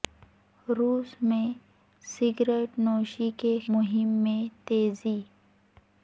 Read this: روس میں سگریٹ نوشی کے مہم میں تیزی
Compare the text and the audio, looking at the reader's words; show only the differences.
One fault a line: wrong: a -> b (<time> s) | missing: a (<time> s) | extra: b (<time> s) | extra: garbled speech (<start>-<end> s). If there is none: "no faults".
no faults